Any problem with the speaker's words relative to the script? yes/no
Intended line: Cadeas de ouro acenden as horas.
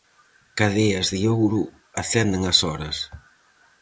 no